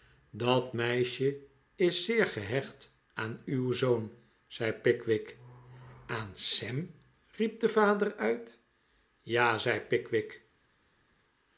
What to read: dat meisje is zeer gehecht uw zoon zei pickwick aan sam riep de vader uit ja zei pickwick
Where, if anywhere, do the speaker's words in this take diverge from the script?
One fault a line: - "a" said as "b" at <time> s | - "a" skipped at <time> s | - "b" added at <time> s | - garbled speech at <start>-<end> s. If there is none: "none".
- "aan" added at 3.1 s